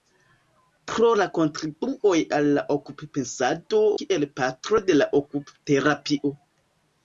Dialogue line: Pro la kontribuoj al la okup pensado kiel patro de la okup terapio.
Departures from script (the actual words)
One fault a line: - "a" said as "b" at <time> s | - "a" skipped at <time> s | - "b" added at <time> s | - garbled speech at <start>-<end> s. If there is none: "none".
none